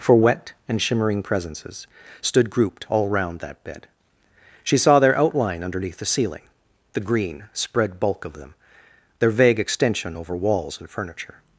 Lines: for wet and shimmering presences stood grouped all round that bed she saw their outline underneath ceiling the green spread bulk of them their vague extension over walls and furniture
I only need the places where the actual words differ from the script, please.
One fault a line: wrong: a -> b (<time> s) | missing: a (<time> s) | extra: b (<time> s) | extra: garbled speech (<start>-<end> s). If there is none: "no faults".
extra: the (6.0 s)